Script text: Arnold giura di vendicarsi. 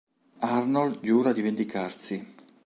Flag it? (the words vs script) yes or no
no